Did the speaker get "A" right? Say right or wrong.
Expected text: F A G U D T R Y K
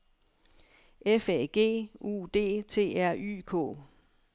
right